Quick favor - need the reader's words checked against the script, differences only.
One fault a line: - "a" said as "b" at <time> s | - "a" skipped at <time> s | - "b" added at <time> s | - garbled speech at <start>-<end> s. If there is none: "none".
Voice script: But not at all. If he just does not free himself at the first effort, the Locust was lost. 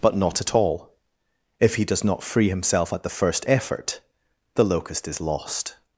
- "just" skipped at 1.9 s
- "was" said as "is" at 5.1 s